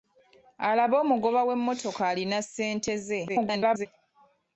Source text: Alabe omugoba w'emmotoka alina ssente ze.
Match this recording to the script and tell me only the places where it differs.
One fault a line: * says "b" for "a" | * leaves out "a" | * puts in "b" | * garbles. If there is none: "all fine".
* garbles